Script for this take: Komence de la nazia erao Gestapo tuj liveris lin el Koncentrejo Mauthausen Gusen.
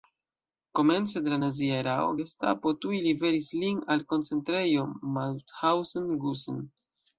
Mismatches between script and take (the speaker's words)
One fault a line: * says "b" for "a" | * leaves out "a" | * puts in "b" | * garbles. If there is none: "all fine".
* says "al" for "el"